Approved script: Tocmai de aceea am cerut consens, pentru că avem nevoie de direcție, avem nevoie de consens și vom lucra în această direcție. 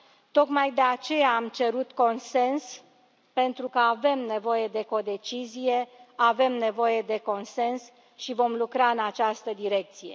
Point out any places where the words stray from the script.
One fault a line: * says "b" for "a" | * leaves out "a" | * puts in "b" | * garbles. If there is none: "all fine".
* says "codecizie" for "direcție"